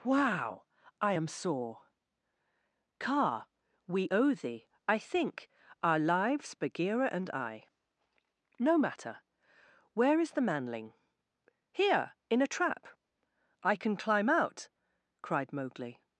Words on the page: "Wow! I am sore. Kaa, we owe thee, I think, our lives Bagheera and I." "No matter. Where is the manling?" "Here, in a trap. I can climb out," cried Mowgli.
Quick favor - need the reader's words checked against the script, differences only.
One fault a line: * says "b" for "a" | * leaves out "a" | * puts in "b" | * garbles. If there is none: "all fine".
all fine